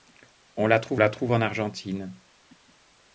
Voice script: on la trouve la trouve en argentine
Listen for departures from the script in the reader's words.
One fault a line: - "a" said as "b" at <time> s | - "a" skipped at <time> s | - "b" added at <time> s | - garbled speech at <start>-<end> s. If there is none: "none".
none